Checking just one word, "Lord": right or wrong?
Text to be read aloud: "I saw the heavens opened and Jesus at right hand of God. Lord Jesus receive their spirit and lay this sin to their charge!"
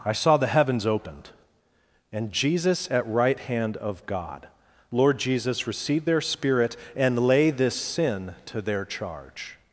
right